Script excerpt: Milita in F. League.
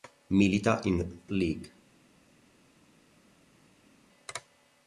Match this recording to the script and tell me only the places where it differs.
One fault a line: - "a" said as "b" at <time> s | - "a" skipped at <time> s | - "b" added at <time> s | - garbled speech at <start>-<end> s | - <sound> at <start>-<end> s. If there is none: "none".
- "F" skipped at 1.2 s